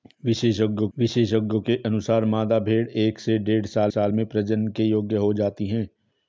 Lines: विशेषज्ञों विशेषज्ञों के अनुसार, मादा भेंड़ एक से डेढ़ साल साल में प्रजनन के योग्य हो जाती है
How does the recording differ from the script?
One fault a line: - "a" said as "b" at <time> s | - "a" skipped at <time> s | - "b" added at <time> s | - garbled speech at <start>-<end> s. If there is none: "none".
none